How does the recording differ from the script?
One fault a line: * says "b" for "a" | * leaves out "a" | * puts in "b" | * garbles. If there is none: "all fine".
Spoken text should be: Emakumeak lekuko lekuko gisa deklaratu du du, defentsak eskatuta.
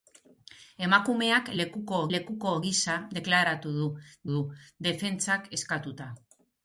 all fine